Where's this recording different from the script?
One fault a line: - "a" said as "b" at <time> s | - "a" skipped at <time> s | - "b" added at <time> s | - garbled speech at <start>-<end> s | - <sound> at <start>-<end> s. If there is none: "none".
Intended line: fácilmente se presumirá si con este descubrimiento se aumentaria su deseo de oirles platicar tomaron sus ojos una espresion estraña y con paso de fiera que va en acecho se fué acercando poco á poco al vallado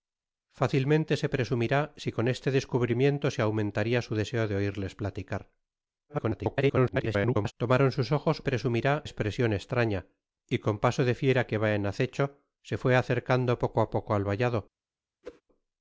- garbled speech at 6.1-7.5 s
- "una" said as "presumirá" at 8.4 s
- whoosh at 15.2-15.4 s